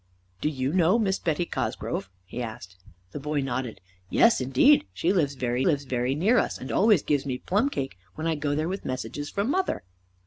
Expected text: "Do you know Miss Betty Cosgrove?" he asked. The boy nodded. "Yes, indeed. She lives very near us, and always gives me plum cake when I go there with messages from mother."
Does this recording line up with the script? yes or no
no